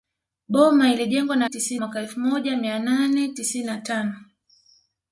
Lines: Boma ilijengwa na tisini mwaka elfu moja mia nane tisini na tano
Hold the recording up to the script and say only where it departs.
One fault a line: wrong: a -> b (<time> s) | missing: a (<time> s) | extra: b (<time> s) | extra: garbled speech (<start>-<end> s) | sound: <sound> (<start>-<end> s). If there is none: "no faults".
no faults